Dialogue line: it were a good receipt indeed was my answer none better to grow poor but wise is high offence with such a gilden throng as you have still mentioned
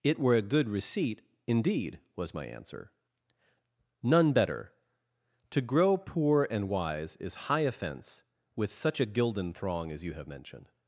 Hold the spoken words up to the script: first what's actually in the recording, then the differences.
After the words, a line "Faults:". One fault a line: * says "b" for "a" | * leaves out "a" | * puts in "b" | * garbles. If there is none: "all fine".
it were a good receipt indeed was my answer none better to grow poor and wise is high offence with such a gilden throng as you have mentioned
Faults:
* says "and" for "but"
* leaves out "still"